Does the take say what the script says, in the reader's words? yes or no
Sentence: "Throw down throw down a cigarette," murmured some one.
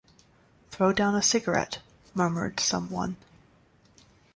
no